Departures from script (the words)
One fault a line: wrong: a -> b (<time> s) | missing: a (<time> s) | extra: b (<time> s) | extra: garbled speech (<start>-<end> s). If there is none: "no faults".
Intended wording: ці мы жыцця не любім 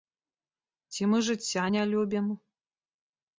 no faults